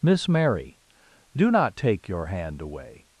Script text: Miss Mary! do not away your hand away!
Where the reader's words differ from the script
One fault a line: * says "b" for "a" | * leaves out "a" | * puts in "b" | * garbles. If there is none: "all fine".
* says "take" for "away"